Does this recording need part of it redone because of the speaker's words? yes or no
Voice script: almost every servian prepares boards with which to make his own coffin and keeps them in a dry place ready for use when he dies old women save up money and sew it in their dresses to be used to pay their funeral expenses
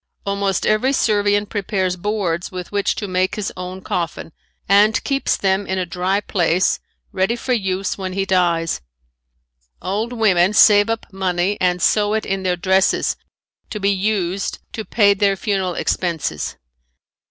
no